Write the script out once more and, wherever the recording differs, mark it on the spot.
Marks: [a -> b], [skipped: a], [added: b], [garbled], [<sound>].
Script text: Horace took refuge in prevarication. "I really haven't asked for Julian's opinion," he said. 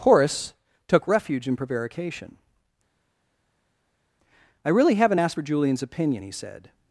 Horace took refuge in prevarication. "I really haven't asked for Julian's opinion," he said.